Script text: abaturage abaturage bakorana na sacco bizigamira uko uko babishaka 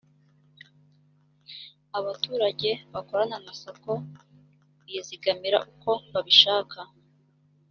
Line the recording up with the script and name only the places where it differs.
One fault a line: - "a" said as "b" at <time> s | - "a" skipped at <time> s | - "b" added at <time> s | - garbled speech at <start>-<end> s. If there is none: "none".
- "abaturage" skipped at 2.7 s
- "uko" skipped at 5.9 s